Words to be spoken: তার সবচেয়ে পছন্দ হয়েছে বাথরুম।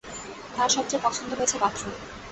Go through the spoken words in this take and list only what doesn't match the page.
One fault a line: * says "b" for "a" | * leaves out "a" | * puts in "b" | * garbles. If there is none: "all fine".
all fine